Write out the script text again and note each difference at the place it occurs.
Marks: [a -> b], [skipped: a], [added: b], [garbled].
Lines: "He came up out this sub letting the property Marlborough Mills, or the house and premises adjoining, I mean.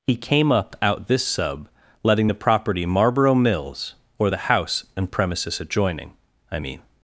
"He came up out this sub letting the property Marlborough Mills, or the house and premises adjoining, I mean.